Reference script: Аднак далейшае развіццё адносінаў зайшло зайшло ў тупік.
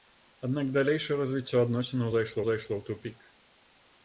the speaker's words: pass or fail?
pass